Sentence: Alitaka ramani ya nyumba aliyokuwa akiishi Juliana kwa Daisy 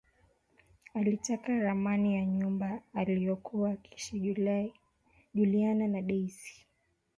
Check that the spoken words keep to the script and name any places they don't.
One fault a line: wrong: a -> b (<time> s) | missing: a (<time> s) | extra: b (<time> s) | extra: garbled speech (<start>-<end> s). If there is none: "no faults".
wrong: kwa -> na (5.9 s)